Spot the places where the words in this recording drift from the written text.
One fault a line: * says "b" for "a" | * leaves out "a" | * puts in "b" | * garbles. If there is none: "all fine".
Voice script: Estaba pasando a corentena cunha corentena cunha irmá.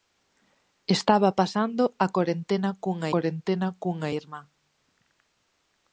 all fine